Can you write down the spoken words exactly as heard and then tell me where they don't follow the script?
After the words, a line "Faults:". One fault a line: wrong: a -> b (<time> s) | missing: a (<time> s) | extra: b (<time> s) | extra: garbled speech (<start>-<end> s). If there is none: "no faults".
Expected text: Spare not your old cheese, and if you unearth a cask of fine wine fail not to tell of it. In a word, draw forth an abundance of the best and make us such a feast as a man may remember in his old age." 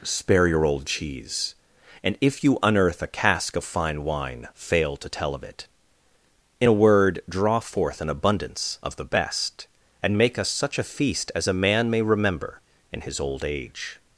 Spare your old cheese, and if you unearth a cask of fine wine fail to tell of it. In a word, draw forth an abundance of the best and make us such a feast as a man may remember in his old age."
Faults:
missing: not (0.5 s)
missing: not (5.0 s)